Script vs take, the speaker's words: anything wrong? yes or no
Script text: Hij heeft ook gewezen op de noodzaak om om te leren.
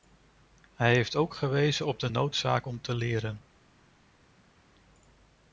yes